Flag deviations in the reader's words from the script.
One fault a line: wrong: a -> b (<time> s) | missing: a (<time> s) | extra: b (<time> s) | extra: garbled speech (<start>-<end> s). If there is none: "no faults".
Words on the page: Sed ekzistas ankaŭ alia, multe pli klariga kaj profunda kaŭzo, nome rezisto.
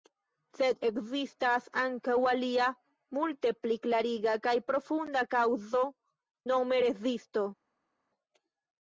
no faults